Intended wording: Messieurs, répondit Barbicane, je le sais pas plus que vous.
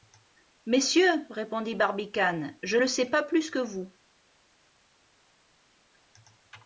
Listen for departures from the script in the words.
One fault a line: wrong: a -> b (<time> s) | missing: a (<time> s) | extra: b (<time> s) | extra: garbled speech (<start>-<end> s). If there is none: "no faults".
no faults